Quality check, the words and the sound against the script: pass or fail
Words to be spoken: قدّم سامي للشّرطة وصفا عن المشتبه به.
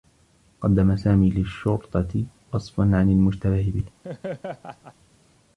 fail